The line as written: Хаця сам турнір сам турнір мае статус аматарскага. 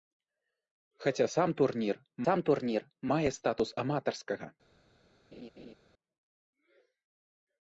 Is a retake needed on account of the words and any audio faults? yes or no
yes